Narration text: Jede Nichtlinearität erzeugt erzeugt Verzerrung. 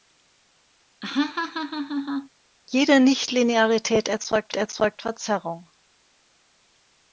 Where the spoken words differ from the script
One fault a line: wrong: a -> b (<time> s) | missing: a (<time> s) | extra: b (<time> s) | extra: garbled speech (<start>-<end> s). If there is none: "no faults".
no faults